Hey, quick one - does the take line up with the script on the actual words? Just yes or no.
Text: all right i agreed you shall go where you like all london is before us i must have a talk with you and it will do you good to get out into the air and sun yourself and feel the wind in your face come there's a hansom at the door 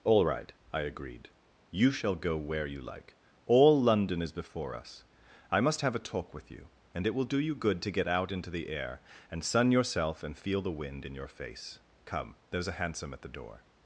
yes